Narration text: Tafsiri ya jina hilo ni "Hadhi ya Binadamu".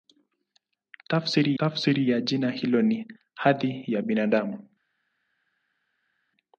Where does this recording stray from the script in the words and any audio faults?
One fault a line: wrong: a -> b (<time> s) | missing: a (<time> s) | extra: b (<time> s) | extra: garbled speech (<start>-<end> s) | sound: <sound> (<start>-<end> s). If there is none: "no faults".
extra: tafsiri (1.6 s)